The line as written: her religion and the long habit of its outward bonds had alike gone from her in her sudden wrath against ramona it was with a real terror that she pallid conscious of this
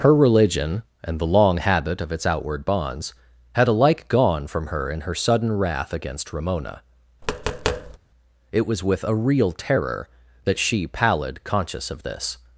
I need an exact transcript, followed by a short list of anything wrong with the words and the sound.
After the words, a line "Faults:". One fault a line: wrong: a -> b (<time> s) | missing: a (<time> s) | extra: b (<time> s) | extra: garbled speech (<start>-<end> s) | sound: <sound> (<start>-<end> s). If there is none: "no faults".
her religion and the long habit of its outward bonds had alike gone from her in her sudden wrath against ramona it was with a real terror that she pallid conscious of this
Faults:
sound: tap (7.2-8.0 s)